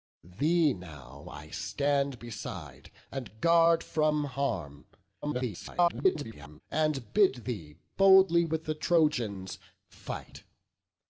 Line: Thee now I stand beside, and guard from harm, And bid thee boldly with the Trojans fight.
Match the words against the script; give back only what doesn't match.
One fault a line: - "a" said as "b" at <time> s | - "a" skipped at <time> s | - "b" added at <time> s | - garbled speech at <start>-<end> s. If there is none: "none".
- garbled speech at 5.2-6.6 s